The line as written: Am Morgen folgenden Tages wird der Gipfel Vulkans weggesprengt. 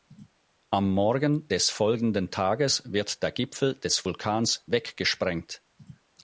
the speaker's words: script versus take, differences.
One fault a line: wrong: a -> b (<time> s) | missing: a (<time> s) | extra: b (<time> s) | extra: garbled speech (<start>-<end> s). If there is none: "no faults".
extra: des (1.5 s)
extra: des (3.7 s)